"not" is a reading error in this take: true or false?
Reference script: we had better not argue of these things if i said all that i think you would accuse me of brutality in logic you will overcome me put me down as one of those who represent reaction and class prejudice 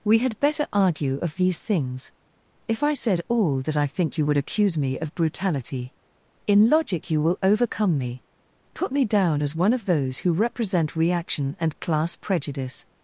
true